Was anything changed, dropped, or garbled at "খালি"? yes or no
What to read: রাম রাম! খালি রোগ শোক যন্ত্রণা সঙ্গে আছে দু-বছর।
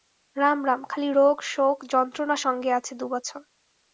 no